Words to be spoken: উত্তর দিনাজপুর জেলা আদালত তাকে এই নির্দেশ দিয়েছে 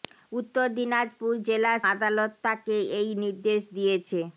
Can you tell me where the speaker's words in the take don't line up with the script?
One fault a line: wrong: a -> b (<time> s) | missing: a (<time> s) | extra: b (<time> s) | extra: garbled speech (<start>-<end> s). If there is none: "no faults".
no faults